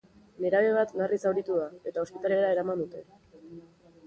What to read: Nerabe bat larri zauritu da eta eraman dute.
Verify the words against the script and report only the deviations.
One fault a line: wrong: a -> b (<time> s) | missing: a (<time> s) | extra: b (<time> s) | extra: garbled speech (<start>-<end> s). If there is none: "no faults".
extra: ospitalera (2.1 s)